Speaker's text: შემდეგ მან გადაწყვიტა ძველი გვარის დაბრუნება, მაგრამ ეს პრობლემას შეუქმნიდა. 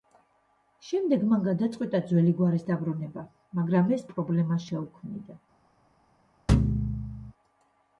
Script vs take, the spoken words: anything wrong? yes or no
no